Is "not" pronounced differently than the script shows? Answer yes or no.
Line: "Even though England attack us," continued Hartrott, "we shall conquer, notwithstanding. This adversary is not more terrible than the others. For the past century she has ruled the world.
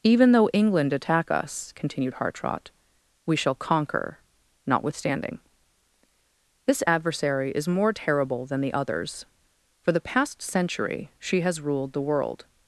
yes